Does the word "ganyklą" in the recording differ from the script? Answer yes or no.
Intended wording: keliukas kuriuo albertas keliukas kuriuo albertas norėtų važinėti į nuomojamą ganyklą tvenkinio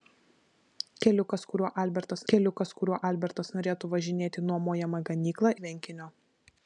no